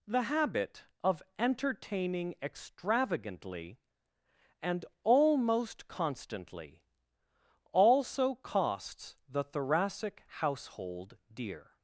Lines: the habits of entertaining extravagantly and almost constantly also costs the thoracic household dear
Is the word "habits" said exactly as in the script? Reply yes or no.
no